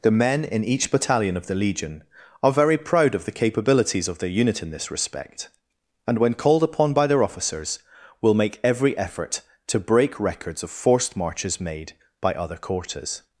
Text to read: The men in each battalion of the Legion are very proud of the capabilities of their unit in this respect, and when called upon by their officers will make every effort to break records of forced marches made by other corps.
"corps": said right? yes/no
no